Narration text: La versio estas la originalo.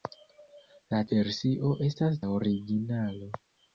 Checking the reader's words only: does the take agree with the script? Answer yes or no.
yes